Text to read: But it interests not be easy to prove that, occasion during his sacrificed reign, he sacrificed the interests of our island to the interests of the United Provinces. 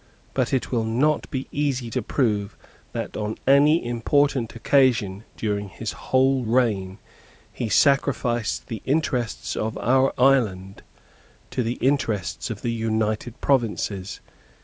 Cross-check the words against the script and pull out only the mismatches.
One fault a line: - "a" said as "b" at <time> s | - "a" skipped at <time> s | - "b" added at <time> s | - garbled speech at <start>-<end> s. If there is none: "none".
- "interests" said as "will" at 0.7 s
- "on any important" added at 3.2 s
- "sacrificed" said as "whole" at 5.9 s